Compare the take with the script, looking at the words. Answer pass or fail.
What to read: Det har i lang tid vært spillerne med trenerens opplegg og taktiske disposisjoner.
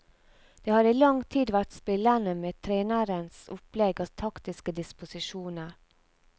pass